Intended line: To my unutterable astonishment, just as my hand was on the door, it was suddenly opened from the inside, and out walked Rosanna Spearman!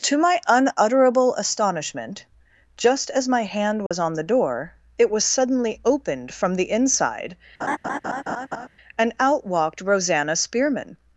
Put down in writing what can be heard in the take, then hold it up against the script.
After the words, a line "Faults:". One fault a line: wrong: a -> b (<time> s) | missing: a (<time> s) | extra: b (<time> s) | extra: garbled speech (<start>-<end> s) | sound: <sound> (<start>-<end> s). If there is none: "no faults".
To my unutterable astonishment, just as my hand was on the door, it was suddenly opened from the inside, and out walked Rosanna Spearman!
Faults:
sound: dropout (3.9-3.9 s)
sound: laugh (7.6-8.7 s)